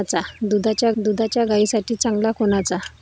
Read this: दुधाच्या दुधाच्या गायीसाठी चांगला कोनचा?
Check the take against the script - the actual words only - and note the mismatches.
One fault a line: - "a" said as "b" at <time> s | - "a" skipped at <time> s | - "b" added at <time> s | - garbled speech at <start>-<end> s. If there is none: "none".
none